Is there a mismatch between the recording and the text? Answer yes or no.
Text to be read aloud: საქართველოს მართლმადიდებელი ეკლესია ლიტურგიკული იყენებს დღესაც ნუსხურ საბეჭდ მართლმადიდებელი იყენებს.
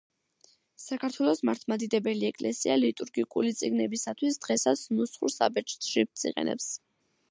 yes